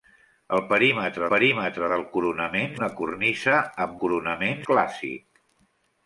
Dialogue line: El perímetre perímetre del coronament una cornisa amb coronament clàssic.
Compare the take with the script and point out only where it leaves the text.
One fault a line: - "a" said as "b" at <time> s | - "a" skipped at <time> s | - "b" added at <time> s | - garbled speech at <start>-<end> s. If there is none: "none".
none